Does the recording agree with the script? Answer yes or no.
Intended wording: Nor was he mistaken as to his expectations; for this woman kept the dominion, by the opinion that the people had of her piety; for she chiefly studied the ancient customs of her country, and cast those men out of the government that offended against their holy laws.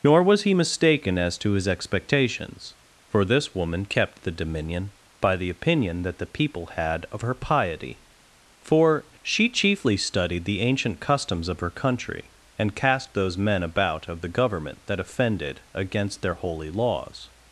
no